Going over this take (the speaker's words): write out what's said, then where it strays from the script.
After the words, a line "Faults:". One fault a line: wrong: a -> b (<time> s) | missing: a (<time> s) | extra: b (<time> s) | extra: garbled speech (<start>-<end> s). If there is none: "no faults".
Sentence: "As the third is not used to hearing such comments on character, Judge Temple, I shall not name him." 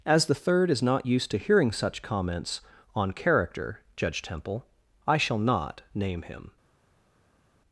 "As the third is not used to hearing such comments on character, Judge Temple, I shall not name him."
Faults:
no faults